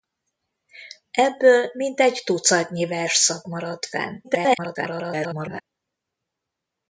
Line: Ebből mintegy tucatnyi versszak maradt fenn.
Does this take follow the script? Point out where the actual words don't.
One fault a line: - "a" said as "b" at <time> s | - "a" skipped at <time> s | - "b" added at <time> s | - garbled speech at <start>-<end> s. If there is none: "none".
- garbled speech at 4.2-5.6 s